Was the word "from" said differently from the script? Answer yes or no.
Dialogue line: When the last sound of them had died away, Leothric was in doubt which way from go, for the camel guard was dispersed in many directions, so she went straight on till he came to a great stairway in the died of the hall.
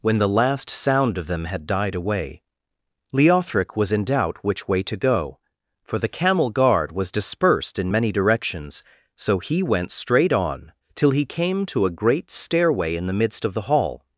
yes